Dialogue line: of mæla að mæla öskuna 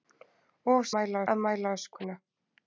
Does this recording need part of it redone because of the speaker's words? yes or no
no